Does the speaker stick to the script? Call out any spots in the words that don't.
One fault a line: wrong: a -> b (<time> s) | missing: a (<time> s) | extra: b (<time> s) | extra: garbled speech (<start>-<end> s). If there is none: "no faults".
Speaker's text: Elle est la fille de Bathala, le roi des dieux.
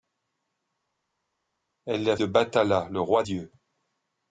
missing: fille (2.2 s)
missing: des (3.2 s)